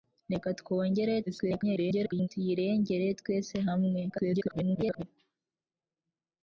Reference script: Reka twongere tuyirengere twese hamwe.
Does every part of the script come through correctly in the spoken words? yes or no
no